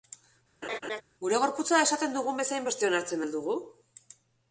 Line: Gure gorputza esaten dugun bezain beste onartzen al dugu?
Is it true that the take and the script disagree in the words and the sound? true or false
true